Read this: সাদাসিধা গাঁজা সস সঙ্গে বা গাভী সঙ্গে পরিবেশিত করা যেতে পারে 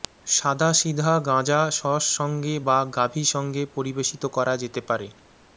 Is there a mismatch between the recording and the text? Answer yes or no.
no